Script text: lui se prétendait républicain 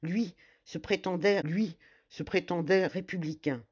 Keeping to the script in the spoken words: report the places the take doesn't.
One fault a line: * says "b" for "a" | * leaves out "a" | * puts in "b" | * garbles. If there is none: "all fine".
* puts in "lui se prétendait"